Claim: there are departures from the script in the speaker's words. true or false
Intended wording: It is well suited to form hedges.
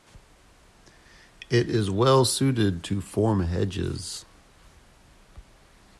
false